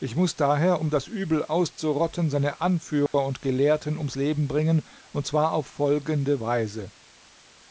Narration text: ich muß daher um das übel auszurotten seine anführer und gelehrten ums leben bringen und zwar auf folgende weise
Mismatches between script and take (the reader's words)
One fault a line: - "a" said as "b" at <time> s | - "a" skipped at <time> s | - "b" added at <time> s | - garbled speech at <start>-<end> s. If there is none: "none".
none